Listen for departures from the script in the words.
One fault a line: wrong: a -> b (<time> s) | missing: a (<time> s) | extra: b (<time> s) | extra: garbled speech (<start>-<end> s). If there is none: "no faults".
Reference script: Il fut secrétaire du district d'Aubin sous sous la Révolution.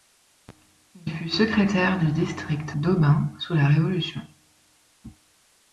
missing: sous (3.5 s)